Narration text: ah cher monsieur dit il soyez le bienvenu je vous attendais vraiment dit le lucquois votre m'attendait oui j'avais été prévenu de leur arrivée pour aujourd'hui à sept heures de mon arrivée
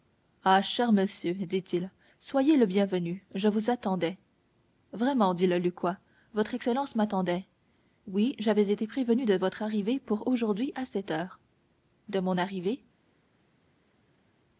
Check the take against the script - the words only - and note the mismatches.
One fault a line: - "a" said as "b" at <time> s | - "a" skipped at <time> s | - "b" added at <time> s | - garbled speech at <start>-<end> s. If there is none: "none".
- "excellence" added at 6.5 s
- "leur" said as "votre" at 9.4 s